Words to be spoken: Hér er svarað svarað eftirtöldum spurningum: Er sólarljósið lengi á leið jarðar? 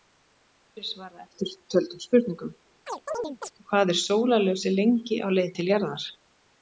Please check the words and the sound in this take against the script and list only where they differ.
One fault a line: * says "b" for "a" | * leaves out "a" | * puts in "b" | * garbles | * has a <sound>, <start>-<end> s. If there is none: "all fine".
* leaves out "svarað"
* has a chirp, 2.9-3.5 s
* puts in "Hvað"
* puts in "til"